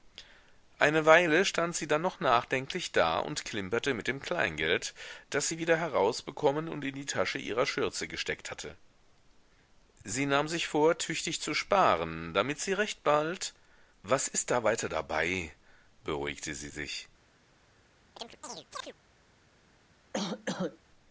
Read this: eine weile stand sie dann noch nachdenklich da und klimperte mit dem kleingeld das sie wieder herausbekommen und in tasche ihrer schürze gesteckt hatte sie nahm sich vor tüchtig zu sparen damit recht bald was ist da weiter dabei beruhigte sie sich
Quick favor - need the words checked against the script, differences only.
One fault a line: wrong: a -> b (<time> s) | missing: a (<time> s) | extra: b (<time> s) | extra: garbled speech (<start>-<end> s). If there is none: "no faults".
extra: die (6.9 s)
extra: sie (12.6 s)